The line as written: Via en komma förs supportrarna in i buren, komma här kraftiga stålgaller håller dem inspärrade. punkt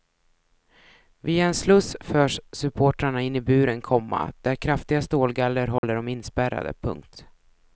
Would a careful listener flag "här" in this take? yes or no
yes